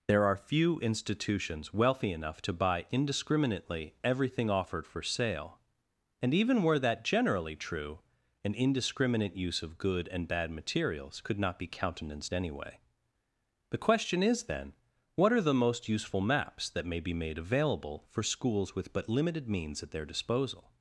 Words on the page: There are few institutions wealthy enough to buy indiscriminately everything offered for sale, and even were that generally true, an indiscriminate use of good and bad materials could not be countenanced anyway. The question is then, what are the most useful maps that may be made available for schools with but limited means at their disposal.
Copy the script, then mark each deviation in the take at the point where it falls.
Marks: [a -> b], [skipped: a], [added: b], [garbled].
There are few institutions wealthy enough to buy indiscriminately everything offered for sale, and even were that generally true, an indiscriminate use of good and bad materials could not be countenanced anyway. The question is then, what are the most useful maps that may be made available for schools with but limited means at their disposal.